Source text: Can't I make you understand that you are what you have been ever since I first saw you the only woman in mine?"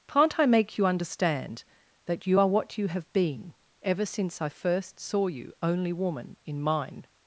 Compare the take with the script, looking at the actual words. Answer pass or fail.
fail